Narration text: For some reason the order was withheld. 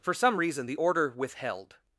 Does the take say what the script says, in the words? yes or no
no